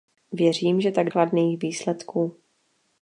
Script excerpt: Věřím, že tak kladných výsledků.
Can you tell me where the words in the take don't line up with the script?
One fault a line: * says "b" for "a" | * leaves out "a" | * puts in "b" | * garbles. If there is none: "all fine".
all fine